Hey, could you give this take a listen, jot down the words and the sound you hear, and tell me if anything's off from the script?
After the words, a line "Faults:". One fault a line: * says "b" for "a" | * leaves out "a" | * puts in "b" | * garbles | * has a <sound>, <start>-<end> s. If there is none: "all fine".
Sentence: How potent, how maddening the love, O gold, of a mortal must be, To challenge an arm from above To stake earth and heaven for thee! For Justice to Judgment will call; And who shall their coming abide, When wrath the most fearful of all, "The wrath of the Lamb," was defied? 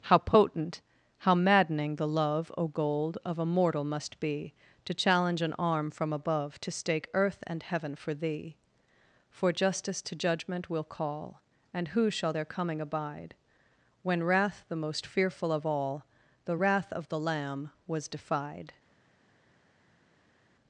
How potent, how maddening the love, O gold, of a mortal must be, To challenge an arm from above To stake earth and heaven for thee! For Justice to Judgment will call; And who shall their coming abide, When wrath the most fearful of all, "The wrath of the Lamb," was defied?
Faults:
all fine